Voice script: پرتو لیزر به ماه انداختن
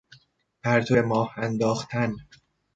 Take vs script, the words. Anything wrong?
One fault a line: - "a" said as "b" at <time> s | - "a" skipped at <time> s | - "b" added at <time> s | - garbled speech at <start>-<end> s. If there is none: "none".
- "لیزر" skipped at 1.0 s